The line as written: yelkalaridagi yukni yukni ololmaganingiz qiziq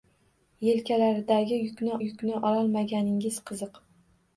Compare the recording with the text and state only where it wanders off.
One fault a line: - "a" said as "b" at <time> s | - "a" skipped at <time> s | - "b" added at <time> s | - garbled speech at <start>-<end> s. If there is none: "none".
none